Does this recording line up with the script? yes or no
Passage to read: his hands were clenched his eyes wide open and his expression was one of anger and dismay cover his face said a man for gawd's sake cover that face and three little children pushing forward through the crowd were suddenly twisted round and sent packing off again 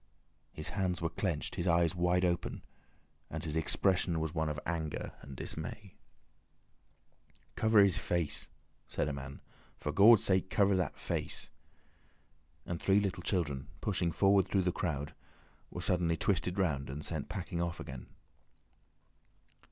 yes